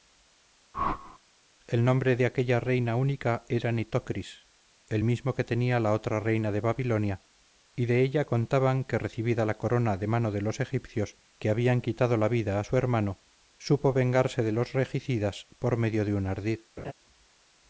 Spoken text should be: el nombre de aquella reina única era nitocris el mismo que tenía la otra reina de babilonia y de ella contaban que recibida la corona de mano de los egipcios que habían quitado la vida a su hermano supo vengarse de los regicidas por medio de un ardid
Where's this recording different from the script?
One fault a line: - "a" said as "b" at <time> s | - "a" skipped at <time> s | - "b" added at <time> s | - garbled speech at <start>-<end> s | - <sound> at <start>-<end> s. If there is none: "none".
- whoosh at 0.7-1.2 s
- laugh at 16.8-16.9 s